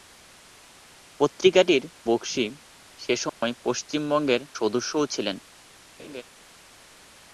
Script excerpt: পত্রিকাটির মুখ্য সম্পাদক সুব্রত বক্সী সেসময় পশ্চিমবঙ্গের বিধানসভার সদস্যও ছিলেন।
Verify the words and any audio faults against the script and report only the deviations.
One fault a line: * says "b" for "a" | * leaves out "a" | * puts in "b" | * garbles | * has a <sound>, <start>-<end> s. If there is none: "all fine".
* leaves out "মুখ্য সম্পাদক সুব্রত"
* has a dropout, 3.3-3.4 s
* leaves out "বিধানসভার"
* has a laugh, 6.0-6.2 s